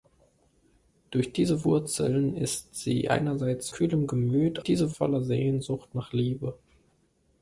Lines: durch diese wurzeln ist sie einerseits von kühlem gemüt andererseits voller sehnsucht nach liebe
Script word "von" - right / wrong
wrong